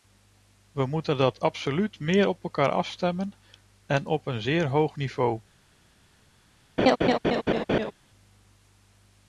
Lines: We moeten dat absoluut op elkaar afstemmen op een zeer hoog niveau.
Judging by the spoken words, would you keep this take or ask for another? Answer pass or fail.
fail